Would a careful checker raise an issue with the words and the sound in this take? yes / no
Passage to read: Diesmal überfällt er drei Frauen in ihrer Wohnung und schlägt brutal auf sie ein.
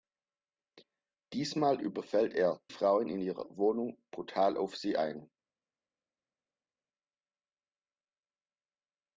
yes